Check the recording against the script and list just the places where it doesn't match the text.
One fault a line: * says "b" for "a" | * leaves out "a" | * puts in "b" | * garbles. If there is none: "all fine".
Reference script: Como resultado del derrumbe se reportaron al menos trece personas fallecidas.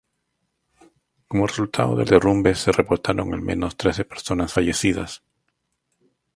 all fine